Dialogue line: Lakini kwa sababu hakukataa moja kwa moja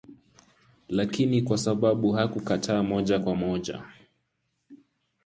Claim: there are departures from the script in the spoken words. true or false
false